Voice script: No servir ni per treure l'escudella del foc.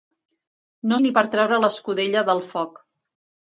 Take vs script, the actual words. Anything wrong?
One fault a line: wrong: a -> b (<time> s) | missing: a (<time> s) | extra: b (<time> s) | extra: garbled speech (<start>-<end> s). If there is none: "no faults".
missing: servir (1.0 s)